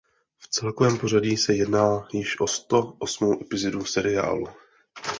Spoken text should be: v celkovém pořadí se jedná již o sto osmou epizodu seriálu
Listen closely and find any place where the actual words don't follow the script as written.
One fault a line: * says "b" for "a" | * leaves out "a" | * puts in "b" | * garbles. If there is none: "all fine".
all fine